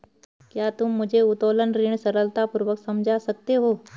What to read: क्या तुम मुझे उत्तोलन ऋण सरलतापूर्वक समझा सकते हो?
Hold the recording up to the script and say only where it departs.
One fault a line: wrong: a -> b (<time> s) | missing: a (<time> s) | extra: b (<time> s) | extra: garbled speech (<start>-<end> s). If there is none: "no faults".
no faults